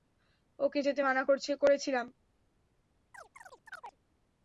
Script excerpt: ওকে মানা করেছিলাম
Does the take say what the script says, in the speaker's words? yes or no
no